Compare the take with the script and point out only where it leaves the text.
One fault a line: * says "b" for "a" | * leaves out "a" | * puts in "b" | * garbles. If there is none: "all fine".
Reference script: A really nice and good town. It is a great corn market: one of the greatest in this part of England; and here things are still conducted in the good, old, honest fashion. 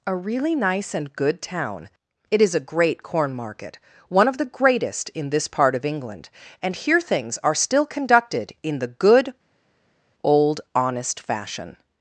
all fine